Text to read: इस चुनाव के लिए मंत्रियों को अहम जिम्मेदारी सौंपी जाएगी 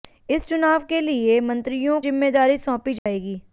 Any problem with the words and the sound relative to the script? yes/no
yes